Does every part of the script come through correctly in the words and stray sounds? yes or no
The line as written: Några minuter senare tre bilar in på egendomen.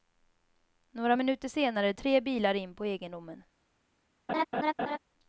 no